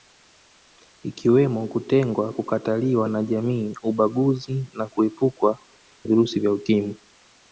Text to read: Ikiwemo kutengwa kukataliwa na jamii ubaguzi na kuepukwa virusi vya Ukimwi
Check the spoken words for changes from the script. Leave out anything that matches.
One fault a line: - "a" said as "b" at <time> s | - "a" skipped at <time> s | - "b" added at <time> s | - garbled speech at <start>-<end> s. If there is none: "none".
none